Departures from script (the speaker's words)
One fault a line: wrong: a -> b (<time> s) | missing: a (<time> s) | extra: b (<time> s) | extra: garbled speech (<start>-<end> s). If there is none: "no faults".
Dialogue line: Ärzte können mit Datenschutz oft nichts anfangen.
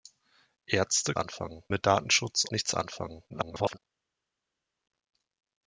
wrong: können -> anfangen (1.2 s)
missing: oft (2.4 s)
extra: garbled speech (3.3-3.8 s)